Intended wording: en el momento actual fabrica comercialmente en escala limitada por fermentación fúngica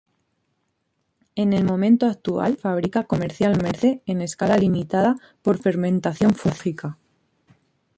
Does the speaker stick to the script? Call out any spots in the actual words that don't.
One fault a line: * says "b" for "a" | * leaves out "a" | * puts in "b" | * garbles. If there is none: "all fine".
all fine